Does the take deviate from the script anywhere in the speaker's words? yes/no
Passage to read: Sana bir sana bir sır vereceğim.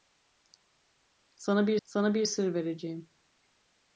no